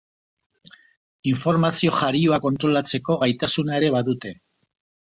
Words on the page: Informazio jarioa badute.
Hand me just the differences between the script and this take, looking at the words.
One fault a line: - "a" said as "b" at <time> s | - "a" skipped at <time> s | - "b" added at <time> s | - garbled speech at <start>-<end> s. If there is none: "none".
- "kontrolatzeko gaitasuna ere" added at 2.5 s